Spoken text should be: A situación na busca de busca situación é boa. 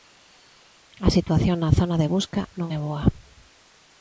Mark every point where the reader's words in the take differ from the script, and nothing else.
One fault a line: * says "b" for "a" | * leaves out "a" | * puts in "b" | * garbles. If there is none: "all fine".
* says "zona" for "busca"
* says "non" for "situación"